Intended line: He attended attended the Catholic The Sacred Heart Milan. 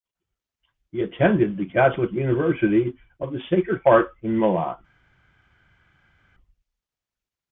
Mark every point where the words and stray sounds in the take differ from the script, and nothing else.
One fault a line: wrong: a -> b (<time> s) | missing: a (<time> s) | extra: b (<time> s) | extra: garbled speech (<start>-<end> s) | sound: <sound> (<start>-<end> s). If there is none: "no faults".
missing: attended (1.6 s)
extra: University of (2.1 s)
extra: in (4.2 s)